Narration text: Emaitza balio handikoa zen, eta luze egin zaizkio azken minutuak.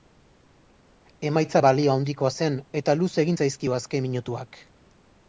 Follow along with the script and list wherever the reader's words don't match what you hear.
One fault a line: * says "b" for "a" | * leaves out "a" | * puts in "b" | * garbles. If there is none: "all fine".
all fine